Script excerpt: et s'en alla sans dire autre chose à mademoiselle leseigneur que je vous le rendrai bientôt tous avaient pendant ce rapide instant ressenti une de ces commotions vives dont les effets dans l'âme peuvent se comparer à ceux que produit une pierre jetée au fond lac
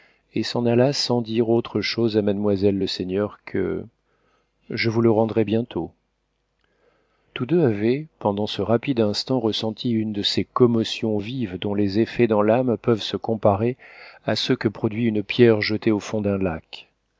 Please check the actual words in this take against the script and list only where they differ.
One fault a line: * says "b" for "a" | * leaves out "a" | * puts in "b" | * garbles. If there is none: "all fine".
* puts in "deux"
* puts in "d'un"